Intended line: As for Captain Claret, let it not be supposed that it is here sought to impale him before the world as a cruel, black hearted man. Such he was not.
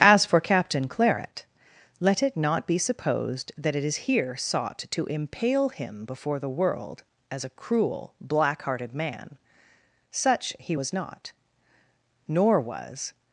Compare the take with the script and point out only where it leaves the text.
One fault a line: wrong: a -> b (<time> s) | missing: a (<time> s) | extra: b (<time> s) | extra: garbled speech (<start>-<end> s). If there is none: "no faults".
extra: Nor was (12.3 s)